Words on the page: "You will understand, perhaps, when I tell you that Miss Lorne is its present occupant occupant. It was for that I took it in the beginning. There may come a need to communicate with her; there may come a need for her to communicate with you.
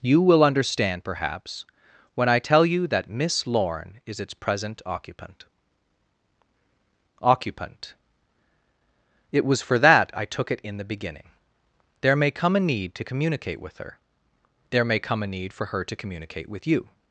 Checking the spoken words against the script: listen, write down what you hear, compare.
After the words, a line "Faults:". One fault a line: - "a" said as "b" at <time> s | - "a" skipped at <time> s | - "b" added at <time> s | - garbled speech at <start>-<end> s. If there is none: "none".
"You will understand, perhaps, when I tell you that Miss Lorne is its present occupant occupant. It was for that I took it in the beginning. There may come a need to communicate with her; there may come a need for her to communicate with you.
Faults:
none